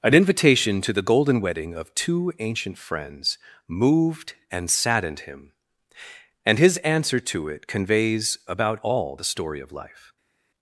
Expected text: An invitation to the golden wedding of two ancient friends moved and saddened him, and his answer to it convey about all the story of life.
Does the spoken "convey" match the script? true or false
false